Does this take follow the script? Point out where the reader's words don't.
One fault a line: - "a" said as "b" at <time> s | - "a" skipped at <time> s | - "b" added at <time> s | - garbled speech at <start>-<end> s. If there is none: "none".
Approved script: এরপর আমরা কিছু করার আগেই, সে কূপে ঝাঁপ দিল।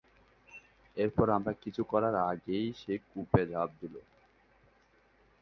none